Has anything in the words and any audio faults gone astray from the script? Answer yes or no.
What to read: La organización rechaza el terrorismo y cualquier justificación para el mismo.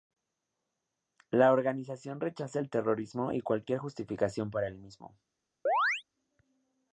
yes